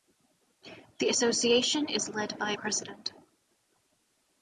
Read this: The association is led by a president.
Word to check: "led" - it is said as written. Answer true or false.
true